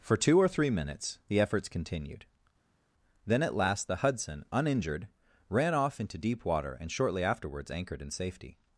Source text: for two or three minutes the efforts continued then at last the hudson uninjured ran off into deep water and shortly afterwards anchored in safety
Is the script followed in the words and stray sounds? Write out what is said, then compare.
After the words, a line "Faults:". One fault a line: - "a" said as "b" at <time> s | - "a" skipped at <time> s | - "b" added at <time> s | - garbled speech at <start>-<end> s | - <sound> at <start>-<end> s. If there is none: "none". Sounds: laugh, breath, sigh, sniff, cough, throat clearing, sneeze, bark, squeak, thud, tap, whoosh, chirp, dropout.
for two or three minutes the efforts continued then at last the hudson uninjured ran off into deep water and shortly afterwards anchored in safety
Faults:
none